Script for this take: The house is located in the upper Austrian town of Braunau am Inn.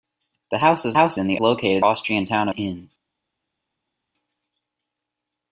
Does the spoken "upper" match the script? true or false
false